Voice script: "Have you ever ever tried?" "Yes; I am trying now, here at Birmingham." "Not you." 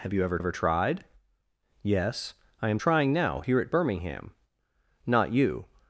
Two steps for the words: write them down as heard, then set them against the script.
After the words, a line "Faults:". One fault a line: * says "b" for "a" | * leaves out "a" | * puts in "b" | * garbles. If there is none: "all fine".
"Have you ever ever tried?" "Yes; I am trying now, here at Birmingham." "Not you."
Faults:
all fine